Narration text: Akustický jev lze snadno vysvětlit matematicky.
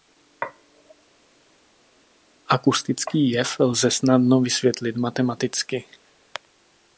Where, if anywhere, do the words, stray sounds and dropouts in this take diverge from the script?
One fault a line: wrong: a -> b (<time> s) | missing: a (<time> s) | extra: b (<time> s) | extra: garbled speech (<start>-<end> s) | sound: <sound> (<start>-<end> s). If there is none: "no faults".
no faults